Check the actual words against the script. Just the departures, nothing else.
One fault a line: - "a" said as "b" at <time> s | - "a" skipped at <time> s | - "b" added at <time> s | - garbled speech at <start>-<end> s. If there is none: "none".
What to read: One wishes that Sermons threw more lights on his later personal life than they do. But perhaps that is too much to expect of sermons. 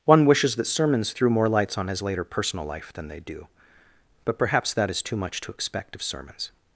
none